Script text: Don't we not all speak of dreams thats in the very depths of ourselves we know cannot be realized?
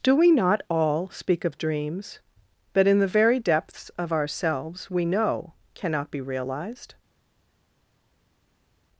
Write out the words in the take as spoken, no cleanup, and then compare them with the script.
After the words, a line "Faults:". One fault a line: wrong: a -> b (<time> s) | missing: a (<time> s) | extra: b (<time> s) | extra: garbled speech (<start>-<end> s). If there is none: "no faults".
Do we not all speak of dreams that in the very depths of ourselves we know cannot be realized?
Faults:
wrong: Don't -> Do (0.0 s)
wrong: thats -> that (2.7 s)